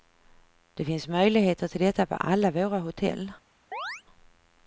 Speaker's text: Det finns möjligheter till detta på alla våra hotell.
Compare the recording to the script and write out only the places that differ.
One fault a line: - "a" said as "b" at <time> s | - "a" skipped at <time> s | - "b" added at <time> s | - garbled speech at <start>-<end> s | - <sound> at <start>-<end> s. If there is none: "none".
- chirp at 3.7-4.0 s